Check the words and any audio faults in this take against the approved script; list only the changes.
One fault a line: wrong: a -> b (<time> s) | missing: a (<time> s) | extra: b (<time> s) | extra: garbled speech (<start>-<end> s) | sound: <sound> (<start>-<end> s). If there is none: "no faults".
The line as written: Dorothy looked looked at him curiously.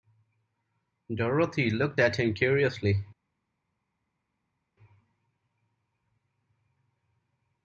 missing: looked (2.0 s)